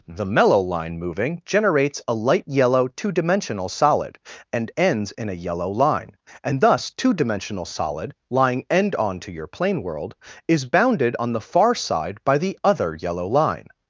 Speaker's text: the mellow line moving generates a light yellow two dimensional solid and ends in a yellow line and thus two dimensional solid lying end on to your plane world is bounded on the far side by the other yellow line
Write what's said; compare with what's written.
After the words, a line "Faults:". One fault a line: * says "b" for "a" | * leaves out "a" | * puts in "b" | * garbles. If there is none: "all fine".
the mellow line moving generates a light yellow two dimensional solid and ends in a yellow line and thus two dimensional solid lying end on to your plane world is bounded on the far side by the other yellow line
Faults:
all fine